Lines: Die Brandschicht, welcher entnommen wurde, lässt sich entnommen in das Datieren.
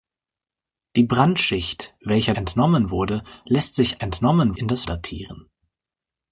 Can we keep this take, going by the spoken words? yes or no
yes